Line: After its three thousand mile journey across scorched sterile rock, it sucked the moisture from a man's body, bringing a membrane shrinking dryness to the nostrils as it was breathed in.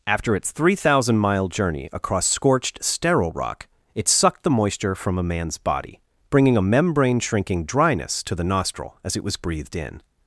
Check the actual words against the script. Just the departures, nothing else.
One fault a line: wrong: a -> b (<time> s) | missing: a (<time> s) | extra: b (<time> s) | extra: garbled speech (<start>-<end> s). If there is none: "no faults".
wrong: nostrils -> nostril (8.4 s)